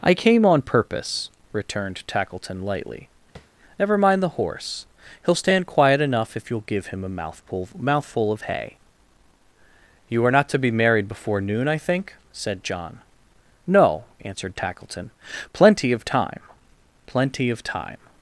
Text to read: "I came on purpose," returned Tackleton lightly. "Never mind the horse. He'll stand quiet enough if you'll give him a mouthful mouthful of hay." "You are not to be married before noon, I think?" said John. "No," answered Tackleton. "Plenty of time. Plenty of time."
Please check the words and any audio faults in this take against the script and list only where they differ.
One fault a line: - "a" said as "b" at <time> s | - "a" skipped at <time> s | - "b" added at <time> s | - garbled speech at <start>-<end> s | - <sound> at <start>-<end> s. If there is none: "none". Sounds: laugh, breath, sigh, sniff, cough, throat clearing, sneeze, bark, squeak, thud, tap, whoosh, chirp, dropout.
- tap at 3.4-3.5 s